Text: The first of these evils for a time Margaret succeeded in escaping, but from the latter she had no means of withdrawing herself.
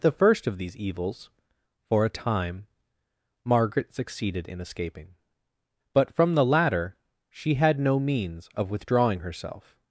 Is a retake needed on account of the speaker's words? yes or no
no